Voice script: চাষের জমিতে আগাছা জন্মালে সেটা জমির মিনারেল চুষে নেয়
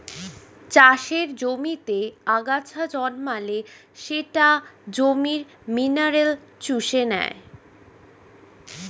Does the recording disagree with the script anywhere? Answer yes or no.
no